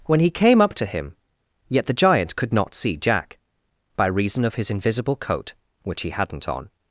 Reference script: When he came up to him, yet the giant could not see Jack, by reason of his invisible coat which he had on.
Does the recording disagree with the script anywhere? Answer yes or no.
yes